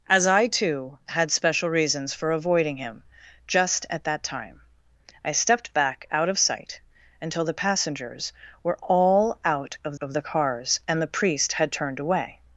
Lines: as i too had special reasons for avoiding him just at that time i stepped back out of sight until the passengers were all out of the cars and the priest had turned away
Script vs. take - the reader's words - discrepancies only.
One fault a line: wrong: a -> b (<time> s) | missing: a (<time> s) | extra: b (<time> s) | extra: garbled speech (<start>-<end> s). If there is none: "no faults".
extra: of (10.0 s)